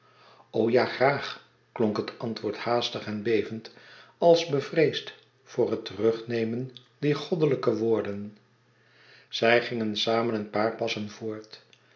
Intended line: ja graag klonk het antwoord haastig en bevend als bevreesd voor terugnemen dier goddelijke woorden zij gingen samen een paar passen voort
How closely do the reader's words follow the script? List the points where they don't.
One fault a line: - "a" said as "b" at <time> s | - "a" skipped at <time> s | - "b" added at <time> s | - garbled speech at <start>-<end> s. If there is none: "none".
- "het" added at 5.7 s